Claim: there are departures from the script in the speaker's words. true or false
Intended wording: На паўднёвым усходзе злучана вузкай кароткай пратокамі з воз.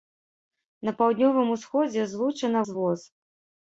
true